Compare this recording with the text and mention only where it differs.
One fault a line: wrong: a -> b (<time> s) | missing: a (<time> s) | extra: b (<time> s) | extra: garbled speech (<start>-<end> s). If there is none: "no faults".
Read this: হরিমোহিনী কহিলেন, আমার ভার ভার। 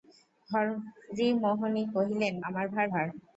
no faults